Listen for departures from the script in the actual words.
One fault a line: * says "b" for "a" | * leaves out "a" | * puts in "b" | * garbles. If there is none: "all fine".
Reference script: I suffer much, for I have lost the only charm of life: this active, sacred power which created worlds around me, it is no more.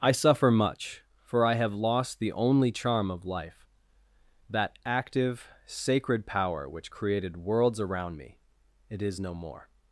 * says "that" for "this"